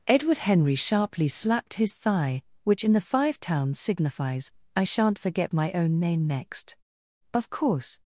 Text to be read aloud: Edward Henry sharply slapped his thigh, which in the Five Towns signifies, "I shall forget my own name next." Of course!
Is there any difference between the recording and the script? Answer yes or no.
yes